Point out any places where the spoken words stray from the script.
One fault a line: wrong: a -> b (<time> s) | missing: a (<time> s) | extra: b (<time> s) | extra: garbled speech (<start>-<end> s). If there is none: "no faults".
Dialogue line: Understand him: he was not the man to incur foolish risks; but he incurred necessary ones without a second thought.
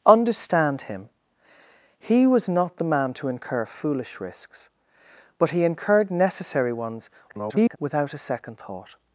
extra: garbled speech (7.3-7.8 s)